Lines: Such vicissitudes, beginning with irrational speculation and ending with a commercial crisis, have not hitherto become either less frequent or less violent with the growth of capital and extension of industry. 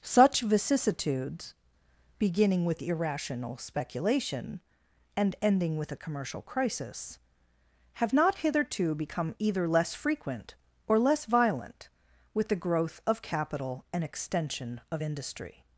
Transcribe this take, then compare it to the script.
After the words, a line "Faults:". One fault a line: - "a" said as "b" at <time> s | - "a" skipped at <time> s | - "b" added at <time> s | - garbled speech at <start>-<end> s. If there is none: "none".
Such vicissitudes, beginning with irrational speculation and ending with a commercial crisis, have not hitherto become either less frequent or less violent with the growth of capital and extension of industry.
Faults:
none